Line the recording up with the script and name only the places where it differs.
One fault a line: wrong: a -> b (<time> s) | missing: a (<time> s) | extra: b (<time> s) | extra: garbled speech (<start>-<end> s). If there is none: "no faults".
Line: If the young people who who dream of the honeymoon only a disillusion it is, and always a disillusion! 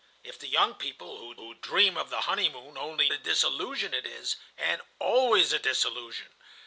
no faults